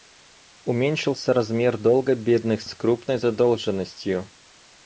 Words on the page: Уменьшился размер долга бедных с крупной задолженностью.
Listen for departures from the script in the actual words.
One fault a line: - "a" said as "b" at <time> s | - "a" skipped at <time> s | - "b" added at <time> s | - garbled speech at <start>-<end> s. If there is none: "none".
none